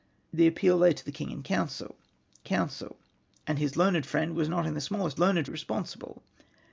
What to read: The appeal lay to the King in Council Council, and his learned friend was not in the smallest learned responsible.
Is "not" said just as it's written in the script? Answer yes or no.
yes